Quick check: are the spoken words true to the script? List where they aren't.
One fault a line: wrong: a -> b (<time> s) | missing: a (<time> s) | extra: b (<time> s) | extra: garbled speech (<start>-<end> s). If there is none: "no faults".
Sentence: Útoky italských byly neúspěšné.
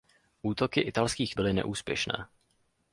no faults